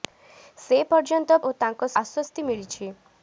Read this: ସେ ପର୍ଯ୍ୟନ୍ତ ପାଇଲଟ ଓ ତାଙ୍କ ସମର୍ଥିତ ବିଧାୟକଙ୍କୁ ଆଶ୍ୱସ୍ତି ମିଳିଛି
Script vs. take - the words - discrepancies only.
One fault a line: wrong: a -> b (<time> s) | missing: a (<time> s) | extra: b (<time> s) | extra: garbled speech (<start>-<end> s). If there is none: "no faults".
missing: ପାଇଲଟ (1.4 s)
missing: ସମର୍ଥିତ ବିଧାୟକଙ୍କୁ (1.9 s)